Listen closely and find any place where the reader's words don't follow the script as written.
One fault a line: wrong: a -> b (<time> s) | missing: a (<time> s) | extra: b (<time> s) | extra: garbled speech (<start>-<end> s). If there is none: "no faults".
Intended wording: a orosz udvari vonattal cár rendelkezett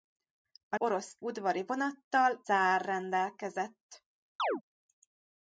no faults